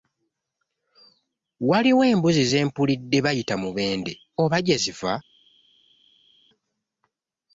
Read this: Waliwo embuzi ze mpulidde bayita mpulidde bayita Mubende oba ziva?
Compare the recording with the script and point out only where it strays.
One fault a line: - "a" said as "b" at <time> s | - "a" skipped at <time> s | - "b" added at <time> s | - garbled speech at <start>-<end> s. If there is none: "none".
- "mpulidde bayita" skipped at 3.6 s
- "gye" added at 4.7 s